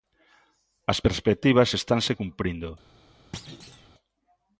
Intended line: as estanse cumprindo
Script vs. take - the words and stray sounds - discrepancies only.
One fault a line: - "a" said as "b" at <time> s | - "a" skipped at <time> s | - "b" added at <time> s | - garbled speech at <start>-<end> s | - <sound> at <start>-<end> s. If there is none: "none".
- "perspectivas" added at 1.0 s
- thud at 3.3-3.9 s